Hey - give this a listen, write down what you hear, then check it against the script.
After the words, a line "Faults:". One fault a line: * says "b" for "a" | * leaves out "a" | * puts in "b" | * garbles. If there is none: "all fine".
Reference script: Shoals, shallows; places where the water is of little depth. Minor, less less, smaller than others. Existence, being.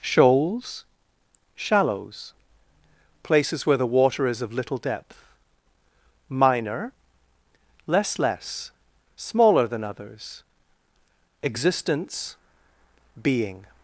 Shoals, shallows; places where the water is of little depth. Minor, less less, smaller than others. Existence, being.
Faults:
all fine